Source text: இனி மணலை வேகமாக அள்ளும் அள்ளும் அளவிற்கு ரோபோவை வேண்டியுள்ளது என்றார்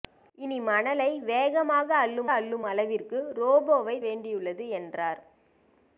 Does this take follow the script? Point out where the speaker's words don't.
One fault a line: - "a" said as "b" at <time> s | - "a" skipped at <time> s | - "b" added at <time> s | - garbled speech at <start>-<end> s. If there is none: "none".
none